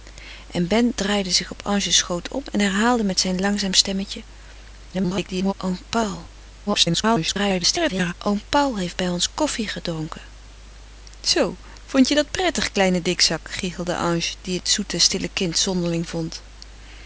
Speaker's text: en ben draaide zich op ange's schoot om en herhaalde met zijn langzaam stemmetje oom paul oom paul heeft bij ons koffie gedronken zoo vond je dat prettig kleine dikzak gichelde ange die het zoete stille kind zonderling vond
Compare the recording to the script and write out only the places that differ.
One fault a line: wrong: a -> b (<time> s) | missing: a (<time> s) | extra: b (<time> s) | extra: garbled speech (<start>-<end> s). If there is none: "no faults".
extra: garbled speech (4.9-5.5 s)
extra: garbled speech (6.7-8.1 s)